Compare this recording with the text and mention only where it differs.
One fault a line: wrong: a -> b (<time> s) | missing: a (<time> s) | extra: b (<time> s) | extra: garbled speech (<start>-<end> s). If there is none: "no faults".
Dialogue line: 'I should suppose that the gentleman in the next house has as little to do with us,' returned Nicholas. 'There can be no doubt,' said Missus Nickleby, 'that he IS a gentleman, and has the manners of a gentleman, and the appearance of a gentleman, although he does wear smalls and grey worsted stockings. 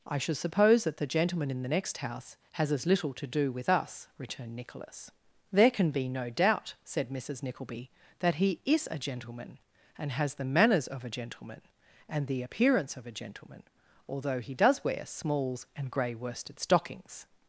no faults